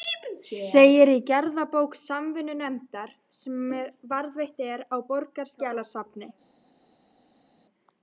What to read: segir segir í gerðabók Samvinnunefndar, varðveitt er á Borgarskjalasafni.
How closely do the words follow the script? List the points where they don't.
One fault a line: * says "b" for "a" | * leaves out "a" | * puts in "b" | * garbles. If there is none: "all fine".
* leaves out "segir"
* puts in "sem"